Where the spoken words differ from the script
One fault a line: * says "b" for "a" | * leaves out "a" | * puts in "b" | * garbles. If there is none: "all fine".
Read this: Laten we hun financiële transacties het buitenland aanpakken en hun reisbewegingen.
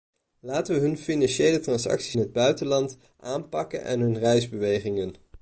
all fine